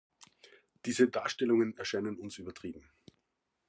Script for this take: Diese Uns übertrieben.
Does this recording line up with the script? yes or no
no